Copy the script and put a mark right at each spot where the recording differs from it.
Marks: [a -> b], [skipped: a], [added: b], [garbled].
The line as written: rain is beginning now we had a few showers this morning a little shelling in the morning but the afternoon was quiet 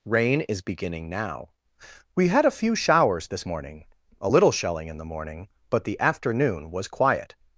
rain is beginning now we had a few showers this morning a little shelling in the morning but the afternoon was quiet